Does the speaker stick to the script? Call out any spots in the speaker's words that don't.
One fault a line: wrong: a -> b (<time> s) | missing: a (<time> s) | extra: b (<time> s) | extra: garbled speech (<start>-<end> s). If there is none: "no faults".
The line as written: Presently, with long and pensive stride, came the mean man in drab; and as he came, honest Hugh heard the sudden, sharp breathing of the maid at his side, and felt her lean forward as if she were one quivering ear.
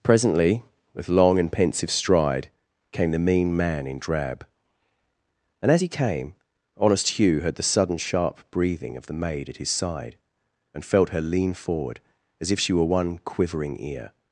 no faults